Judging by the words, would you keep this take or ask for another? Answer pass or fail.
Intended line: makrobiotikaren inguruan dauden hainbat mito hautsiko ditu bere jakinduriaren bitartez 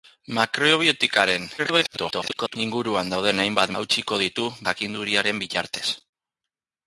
fail